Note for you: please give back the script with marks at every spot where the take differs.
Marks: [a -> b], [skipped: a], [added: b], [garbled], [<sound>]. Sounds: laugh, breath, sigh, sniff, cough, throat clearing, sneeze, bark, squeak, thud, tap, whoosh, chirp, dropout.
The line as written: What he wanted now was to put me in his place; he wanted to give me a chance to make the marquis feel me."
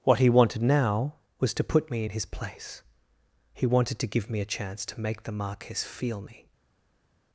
What he wanted now was to put me in his place; he wanted to give me a chance to make the marquis feel me."